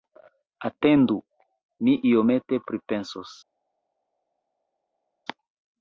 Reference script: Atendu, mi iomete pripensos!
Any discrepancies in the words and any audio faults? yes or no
no